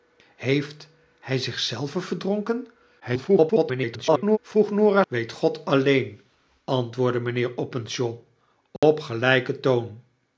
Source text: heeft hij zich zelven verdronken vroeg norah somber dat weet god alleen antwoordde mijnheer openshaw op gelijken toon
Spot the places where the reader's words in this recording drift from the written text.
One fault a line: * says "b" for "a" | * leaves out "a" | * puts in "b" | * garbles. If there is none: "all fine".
* garbles
* leaves out "somber dat"